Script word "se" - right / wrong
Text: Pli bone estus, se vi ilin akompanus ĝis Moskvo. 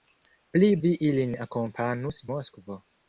wrong